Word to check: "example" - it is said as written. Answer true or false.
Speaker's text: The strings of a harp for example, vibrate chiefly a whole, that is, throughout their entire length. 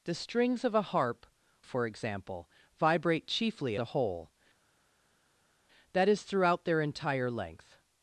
true